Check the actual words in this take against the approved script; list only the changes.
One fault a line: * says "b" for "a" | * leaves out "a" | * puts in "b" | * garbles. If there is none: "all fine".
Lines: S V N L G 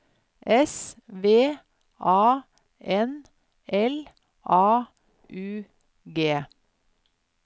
* puts in "A"
* puts in "A U"